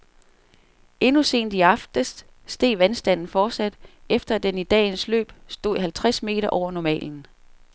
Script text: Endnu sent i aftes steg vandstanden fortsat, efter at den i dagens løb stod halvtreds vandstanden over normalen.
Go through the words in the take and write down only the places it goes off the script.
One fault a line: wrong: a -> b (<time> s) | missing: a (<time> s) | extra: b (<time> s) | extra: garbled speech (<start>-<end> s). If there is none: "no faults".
wrong: vandstanden -> meter (6.2 s)